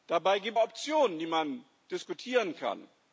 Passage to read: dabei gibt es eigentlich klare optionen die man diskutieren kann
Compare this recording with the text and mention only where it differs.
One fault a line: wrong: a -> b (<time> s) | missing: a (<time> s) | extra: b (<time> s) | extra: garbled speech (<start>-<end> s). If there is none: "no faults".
missing: es eigentlich klare (0.6 s)